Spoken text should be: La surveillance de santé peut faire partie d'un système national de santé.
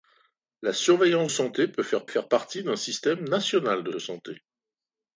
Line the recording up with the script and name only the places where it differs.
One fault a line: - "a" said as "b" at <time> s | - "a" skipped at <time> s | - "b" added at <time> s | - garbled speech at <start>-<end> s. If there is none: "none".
- "de" skipped at 1.3 s
- "faire" added at 2.0 s
- "de" added at 3.9 s